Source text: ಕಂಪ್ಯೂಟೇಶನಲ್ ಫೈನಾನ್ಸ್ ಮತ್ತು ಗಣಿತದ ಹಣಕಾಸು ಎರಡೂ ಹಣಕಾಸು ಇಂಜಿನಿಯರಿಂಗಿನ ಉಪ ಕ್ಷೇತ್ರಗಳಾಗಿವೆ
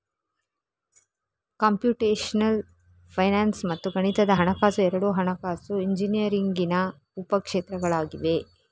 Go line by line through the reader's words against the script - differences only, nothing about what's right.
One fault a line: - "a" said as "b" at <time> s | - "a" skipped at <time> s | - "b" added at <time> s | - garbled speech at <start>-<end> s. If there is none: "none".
none